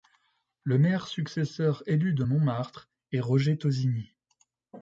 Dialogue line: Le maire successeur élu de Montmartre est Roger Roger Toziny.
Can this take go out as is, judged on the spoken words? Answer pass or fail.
fail